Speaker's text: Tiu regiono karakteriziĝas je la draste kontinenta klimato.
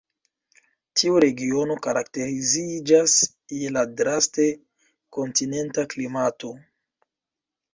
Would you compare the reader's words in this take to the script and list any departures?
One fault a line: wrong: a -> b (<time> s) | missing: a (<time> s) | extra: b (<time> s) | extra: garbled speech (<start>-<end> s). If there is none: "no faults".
no faults